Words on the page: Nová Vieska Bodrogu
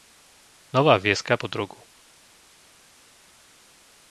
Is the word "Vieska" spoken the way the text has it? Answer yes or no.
yes